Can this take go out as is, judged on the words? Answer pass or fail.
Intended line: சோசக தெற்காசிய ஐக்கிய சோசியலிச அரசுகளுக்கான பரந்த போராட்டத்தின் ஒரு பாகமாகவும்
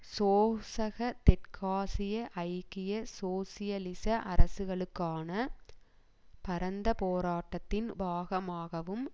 fail